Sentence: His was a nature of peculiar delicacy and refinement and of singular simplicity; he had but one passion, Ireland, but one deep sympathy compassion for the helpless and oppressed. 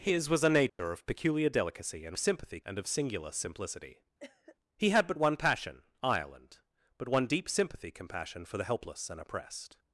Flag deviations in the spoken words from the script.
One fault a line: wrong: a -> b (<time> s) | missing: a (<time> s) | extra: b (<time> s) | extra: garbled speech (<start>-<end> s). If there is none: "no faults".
wrong: refinement -> sympathy (2.2 s)